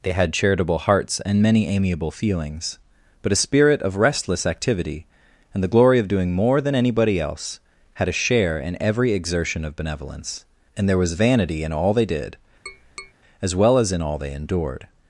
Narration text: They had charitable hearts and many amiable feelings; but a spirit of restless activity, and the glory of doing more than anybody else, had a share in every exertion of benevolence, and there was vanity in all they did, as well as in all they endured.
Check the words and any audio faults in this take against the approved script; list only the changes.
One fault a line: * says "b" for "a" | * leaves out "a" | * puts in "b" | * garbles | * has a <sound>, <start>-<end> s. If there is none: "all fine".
* has a tap, 12.7-13.1 s